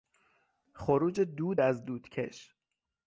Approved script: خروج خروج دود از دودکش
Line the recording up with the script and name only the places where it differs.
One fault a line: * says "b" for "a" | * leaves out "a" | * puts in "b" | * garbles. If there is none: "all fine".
* leaves out "خروج"